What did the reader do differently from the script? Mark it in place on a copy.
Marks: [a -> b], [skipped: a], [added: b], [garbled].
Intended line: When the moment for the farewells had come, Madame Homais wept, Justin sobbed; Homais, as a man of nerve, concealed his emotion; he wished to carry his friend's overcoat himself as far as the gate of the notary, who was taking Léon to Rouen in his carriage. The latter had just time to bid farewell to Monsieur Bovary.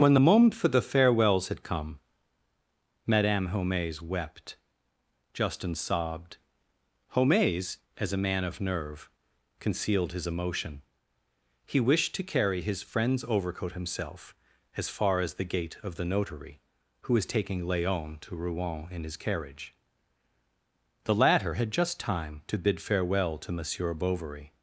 When the moment for the farewells had come, Madame Homais wept, Justin sobbed; Homais, as a man of nerve, concealed his emotion; he wished to carry his friend's overcoat himself as far as the gate of the notary, who was taking Léon to Rouen in his carriage. The latter had just time to bid farewell to Monsieur Bovary.